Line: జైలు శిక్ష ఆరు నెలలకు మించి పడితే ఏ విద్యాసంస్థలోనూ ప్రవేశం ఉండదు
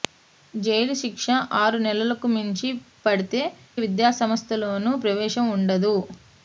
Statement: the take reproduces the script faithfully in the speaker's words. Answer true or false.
false